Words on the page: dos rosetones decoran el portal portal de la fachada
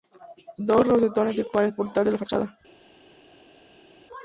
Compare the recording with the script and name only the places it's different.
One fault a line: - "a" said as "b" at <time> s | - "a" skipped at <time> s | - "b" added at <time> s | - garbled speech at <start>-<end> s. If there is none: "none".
- "portal" skipped at 2.1 s